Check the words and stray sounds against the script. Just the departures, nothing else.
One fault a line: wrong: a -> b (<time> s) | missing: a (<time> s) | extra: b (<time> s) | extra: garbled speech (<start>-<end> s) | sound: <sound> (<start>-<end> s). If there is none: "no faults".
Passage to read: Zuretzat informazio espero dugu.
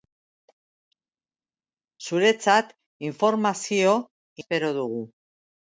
no faults